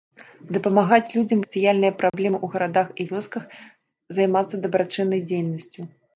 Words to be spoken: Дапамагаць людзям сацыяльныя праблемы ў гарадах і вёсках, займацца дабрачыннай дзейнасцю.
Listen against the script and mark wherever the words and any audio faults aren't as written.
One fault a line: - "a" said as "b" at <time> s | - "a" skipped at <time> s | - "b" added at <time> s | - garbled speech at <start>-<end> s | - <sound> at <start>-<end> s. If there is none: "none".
- dropout at 2.1-2.1 s